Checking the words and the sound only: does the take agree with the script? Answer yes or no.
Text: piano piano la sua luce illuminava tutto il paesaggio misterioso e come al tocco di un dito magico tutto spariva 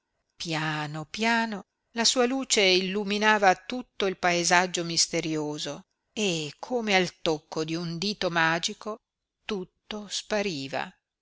yes